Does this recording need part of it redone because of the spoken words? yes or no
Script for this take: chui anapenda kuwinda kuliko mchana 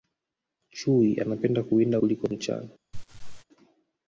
no